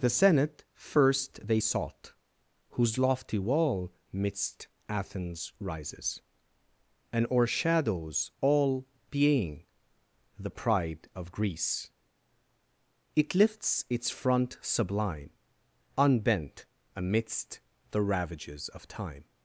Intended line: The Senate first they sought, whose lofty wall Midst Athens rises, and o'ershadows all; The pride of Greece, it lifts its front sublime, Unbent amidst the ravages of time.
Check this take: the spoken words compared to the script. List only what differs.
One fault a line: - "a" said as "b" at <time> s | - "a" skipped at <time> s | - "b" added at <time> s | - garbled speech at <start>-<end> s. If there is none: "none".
- "being" added at 9.1 s